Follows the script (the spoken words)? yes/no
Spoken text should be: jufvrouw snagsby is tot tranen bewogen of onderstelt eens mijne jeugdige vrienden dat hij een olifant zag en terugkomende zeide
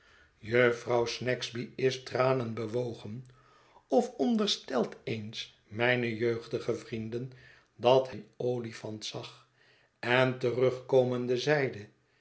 no